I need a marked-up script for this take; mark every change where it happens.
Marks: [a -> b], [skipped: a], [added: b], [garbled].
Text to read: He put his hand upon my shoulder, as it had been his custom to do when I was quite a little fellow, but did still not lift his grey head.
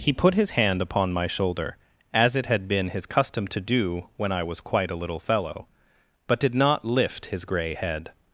He put his hand upon my shoulder, as it had been his custom to do when I was quite a little fellow, but did [skipped: still] not lift his grey head.